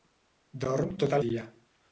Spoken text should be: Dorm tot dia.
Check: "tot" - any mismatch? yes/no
no